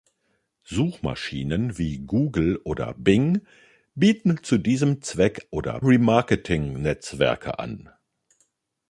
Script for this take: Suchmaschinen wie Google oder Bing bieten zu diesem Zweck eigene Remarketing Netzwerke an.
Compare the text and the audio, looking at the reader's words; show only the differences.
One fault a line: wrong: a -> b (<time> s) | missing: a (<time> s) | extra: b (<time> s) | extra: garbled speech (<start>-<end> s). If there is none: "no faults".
wrong: eigene -> oder (5.5 s)